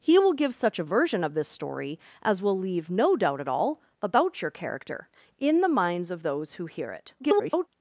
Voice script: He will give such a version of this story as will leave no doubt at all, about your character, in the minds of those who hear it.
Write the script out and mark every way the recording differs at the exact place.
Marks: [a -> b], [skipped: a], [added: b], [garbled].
He will give such a version of this story as will leave no doubt at all, about your character, in the minds of those who hear it. [garbled]